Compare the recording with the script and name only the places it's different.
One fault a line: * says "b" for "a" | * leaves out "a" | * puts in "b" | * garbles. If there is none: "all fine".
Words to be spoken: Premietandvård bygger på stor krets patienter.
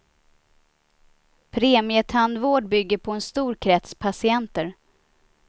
* puts in "en"